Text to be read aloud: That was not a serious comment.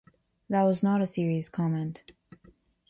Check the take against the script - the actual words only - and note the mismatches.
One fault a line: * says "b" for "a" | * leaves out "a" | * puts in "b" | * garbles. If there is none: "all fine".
all fine